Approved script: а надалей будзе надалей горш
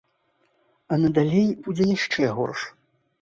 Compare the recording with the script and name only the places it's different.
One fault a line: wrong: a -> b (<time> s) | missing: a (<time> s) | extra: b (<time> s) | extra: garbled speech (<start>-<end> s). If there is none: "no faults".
wrong: надалей -> яшчэ (2.0 s)